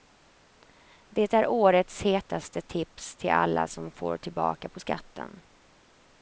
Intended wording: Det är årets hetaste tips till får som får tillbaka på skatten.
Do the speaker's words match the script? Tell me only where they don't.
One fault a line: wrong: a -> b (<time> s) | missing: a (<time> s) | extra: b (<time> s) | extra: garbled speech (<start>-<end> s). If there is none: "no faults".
wrong: får -> alla (3.3 s)